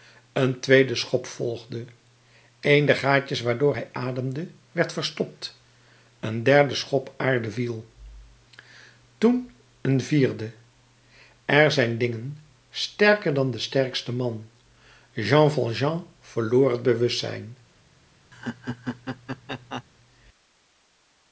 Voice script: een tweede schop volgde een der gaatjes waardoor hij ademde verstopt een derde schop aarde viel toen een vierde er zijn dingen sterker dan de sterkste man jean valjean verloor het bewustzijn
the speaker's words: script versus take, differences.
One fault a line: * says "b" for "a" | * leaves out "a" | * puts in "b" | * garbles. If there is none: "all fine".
* puts in "werd"